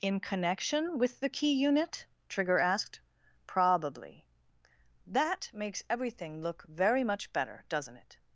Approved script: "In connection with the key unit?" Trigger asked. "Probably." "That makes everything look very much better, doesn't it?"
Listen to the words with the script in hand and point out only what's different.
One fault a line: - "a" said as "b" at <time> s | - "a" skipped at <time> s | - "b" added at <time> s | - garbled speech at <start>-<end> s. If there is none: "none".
none